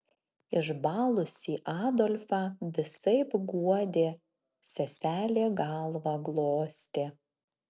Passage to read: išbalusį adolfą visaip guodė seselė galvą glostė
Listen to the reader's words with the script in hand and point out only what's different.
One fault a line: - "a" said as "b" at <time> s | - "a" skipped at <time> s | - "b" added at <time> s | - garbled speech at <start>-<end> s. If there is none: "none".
none